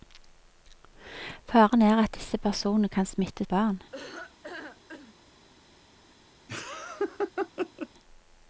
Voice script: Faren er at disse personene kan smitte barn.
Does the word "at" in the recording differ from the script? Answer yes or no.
no